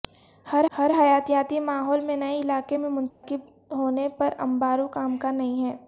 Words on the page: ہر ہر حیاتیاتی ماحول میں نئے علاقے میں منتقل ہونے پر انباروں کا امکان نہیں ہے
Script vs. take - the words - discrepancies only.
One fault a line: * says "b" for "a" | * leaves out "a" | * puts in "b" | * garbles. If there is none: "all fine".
all fine